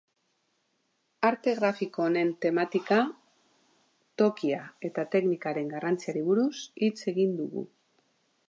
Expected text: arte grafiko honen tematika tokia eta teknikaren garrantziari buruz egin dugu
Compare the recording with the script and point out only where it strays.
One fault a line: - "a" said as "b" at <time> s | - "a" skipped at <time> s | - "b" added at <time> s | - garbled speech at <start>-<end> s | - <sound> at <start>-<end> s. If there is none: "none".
- "hitz" added at 6.9 s